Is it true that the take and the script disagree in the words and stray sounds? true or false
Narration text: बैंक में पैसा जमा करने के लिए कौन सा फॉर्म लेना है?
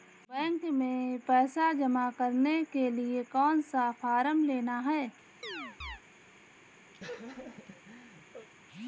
true